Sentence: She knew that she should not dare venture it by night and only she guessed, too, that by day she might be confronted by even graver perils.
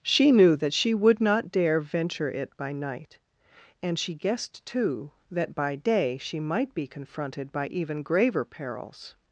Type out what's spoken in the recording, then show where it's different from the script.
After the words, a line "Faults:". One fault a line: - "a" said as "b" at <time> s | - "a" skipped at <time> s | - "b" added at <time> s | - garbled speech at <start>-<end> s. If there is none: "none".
She knew that she would not dare venture it by night and she guessed, too, that by day she might be confronted by even graver perils.
Faults:
- "should" said as "would" at 0.9 s
- "only" skipped at 4.0 s